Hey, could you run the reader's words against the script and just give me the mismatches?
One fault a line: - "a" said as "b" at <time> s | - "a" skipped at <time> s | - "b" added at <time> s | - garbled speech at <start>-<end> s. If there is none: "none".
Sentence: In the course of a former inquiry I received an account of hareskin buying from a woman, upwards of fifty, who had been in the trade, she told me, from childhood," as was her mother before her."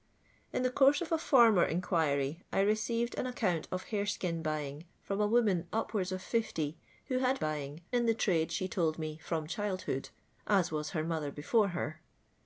- "been" said as "buying" at 7.4 s